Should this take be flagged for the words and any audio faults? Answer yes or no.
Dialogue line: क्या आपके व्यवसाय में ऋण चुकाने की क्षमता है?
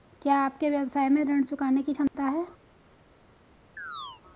yes